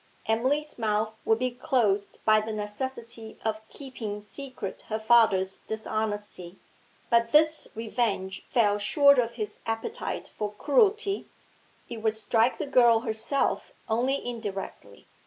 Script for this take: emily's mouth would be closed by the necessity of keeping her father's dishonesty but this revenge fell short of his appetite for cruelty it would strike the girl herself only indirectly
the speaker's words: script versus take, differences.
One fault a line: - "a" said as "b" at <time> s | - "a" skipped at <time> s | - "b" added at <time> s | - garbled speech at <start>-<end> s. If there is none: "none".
- "secret" added at 4.2 s